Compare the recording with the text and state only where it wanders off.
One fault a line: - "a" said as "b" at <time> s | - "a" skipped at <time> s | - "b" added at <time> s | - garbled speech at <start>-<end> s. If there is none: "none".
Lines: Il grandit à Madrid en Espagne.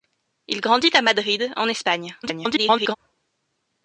- garbled speech at 2.2-3.0 s